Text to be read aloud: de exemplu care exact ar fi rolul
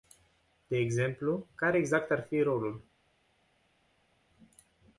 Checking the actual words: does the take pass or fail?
pass